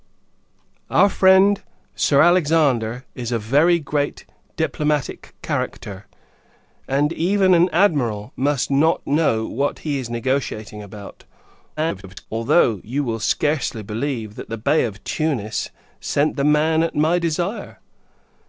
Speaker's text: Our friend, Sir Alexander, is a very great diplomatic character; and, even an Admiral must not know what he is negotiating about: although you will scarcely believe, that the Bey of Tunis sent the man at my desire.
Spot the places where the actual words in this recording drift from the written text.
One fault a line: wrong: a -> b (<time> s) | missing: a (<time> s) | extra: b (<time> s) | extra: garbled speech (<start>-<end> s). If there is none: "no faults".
extra: garbled speech (11.8-12.3 s)